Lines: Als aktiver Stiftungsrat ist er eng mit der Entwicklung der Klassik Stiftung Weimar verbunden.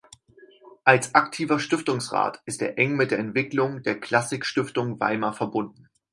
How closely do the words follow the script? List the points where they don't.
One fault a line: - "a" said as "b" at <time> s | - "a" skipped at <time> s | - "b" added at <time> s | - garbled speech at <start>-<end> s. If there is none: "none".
none